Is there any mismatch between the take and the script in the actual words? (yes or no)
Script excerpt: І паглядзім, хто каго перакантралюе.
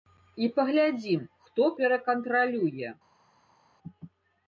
yes